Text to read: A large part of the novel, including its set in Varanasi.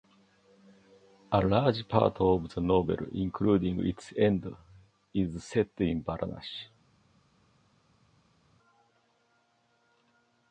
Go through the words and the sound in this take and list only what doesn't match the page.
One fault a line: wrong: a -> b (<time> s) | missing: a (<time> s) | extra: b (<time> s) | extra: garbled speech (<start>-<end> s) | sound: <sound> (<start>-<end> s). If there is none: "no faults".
extra: end is (4.2 s)